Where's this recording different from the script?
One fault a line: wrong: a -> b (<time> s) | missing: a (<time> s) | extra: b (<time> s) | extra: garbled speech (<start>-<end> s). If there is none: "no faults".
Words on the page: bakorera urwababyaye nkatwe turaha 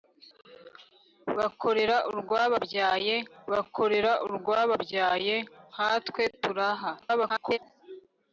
extra: bakorera urwababyaye (3.5 s)
extra: garbled speech (7.0-7.6 s)